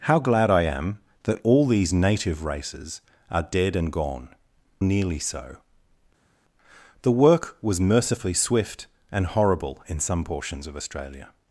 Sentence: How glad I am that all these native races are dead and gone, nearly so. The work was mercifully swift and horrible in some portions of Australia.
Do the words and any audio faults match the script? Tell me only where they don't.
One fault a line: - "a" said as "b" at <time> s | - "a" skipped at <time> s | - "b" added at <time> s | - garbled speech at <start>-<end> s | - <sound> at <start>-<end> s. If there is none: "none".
none